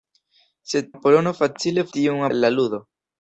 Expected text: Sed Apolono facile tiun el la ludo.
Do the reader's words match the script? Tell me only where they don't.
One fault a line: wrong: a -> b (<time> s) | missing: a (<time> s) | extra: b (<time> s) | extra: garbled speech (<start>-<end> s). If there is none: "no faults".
no faults